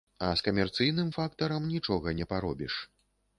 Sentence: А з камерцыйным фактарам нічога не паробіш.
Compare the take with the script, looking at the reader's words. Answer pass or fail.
pass